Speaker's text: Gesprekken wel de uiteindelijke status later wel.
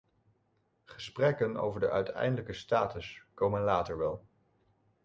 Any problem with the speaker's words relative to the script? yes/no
yes